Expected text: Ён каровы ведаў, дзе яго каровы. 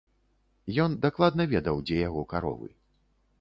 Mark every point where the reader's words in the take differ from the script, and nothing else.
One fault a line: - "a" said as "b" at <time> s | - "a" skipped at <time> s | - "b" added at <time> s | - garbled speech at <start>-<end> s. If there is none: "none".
- "каровы" said as "дакладна" at 1.0 s